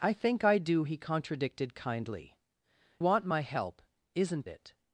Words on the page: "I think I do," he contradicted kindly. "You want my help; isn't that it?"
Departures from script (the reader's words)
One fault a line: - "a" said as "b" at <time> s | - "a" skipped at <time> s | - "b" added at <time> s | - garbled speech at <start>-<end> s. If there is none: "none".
- "You" skipped at 2.4 s
- "that" skipped at 4.5 s